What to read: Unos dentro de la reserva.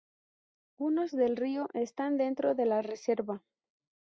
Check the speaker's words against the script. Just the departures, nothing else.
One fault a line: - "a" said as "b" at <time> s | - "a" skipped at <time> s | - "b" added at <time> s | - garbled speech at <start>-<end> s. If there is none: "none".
- "del río están" added at 1.1 s